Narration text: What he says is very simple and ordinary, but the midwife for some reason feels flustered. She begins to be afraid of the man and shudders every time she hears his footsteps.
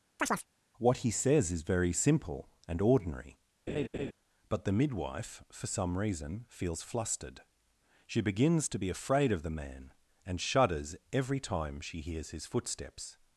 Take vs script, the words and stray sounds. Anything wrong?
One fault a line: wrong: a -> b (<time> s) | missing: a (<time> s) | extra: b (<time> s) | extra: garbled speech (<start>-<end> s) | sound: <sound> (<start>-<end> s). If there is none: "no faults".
sound: chirp (0.2-0.5 s)
sound: laugh (3.7-4.1 s)